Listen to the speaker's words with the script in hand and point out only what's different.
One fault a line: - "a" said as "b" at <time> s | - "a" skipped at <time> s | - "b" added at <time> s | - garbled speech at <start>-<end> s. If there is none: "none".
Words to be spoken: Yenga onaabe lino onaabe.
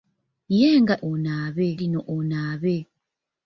none